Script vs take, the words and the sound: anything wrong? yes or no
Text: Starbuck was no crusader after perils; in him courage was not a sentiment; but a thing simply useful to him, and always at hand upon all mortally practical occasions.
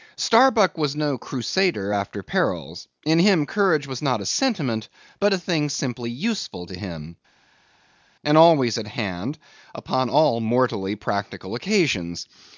no